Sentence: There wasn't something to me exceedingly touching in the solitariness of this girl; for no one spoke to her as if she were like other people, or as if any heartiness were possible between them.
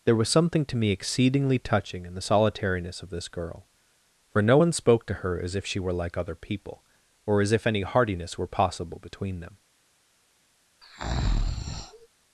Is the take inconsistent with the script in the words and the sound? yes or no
yes